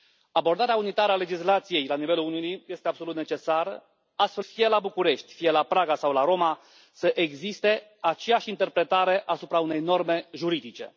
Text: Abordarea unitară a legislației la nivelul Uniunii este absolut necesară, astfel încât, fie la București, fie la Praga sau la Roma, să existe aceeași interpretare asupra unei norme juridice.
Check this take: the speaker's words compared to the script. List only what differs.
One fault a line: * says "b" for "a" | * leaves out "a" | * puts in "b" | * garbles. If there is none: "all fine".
* leaves out "încât"